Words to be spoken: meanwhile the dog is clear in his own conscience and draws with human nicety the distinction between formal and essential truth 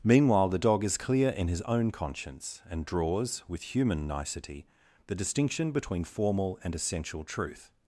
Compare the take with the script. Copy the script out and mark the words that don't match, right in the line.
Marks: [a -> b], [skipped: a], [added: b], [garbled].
meanwhile the dog is clear in his own conscience and draws with human nicety the distinction between formal and essential truth